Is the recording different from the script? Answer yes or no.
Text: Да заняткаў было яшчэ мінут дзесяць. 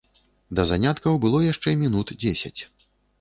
no